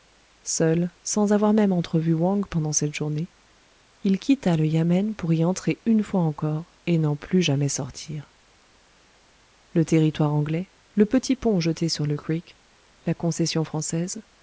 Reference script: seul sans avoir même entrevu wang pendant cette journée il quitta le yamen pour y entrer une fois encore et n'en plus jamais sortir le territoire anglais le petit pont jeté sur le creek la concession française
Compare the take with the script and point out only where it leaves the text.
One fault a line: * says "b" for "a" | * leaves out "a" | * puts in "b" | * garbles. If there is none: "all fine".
all fine